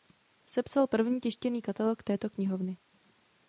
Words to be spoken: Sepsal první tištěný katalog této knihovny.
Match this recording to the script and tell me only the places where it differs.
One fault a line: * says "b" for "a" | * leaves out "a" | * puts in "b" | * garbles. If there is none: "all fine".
all fine